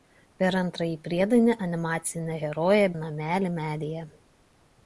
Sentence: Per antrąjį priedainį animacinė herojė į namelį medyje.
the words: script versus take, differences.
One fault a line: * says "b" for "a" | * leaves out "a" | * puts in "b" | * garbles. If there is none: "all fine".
all fine